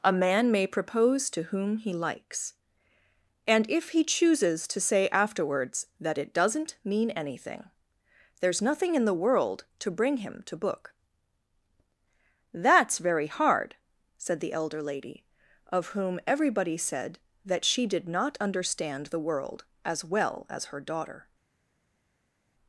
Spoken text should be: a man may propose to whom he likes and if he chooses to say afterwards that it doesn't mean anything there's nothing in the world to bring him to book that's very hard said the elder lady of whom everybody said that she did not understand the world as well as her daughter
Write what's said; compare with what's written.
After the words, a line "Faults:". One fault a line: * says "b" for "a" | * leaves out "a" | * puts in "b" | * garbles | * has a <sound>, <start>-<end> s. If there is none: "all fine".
a man may propose to whom he likes and if he chooses to say afterwards that it doesn't mean anything there's nothing in the world to bring him to book that's very hard said the elder lady of whom everybody said that she did not understand the world as well as her daughter
Faults:
all fine